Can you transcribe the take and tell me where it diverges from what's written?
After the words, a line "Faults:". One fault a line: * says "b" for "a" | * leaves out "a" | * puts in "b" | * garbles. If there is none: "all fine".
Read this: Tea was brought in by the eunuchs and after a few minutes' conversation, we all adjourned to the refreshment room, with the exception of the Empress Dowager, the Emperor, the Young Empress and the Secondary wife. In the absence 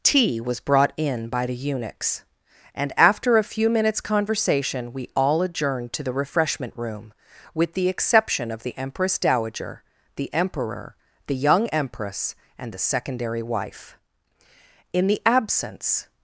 Tea was brought in by the eunuchs and after a few minutes' conversation, we all adjourned to the refreshment room, with the exception of the Empress Dowager, the Emperor, the Young Empress and the Secondary wife. In the absence
Faults:
all fine